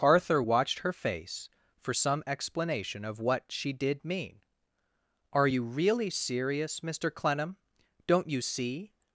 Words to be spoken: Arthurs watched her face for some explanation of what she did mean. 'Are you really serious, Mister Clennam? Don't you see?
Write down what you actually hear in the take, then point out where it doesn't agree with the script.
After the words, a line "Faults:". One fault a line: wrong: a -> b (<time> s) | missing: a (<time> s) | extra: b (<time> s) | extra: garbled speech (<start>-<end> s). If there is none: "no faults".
Arthur watched her face for some explanation of what she did mean. 'Are you really serious, Mister Clennam? Don't you see?
Faults:
wrong: Arthurs -> Arthur (0.0 s)